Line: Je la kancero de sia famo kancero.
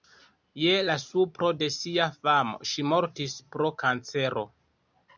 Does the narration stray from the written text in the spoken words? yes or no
yes